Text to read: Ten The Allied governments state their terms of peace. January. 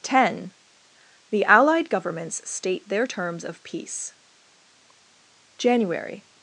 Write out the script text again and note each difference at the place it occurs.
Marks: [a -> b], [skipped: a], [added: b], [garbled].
Ten The Allied governments state their terms of peace. January.